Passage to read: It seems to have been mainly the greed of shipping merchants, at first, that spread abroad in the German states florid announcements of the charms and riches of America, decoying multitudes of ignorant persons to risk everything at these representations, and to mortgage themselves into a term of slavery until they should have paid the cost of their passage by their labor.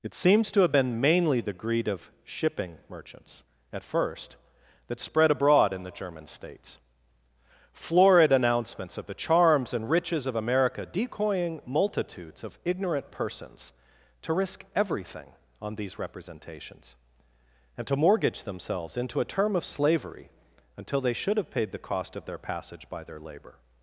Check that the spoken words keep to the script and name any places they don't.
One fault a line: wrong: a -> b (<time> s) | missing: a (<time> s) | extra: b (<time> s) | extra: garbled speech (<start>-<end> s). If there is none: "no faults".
wrong: at -> on (15.6 s)